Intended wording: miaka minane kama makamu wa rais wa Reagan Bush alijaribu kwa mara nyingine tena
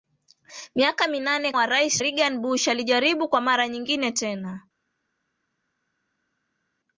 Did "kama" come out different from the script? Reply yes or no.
yes